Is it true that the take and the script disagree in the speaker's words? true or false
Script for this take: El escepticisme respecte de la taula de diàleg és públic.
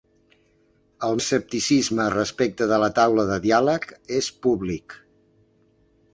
false